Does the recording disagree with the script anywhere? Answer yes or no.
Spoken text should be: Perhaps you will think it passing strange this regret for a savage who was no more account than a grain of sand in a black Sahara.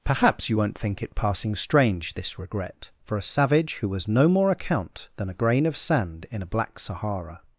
yes